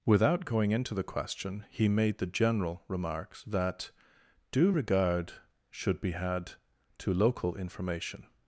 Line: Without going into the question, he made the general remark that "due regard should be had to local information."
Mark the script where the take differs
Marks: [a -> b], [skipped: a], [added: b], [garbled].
Without going into the question, he made the general [remark -> remarks] that "due regard should be had to local information."